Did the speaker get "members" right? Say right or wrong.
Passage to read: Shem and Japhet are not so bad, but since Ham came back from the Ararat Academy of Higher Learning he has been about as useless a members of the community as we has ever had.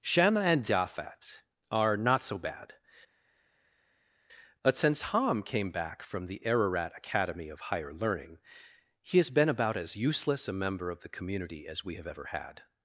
wrong